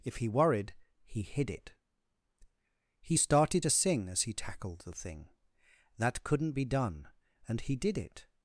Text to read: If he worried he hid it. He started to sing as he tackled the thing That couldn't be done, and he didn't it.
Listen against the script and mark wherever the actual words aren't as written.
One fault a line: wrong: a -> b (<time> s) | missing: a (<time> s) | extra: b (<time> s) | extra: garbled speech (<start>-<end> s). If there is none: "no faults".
wrong: didn't -> did (7.8 s)